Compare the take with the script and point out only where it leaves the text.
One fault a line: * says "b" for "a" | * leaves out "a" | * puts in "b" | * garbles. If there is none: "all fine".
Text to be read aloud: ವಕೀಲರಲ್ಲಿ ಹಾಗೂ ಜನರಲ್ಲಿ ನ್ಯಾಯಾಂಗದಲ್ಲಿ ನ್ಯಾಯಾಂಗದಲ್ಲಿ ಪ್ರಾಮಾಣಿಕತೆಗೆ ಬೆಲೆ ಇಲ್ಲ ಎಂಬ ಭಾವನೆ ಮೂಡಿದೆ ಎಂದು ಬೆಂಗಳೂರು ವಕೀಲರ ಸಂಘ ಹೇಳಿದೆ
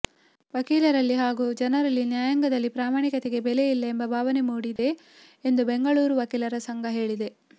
* leaves out "ನ್ಯಾಯಾಂಗದಲ್ಲಿ"